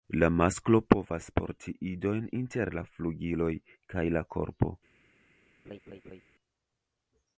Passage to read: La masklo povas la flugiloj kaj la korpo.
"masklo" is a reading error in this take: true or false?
false